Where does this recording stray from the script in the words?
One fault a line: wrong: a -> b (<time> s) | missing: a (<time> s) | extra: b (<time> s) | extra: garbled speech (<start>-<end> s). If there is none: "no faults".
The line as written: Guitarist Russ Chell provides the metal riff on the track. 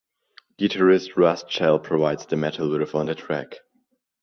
no faults